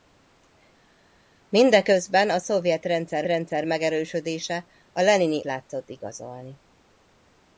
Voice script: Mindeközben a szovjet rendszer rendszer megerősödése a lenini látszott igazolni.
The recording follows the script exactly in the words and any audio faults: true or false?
true